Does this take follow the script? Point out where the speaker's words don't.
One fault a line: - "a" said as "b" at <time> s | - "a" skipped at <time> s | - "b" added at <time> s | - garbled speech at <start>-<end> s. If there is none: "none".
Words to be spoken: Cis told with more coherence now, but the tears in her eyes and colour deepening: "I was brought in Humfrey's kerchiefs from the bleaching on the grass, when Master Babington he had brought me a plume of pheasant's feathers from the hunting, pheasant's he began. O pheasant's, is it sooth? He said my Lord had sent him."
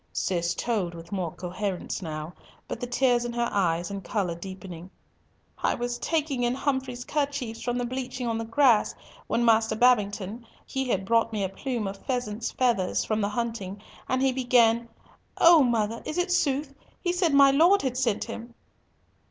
- "brought" said as "taking" at 6.0 s
- "pheasant's" said as "and" at 14.1 s
- "pheasant's" said as "mother" at 15.6 s